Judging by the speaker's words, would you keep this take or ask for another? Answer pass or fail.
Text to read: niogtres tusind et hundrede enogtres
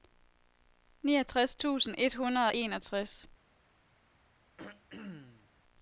fail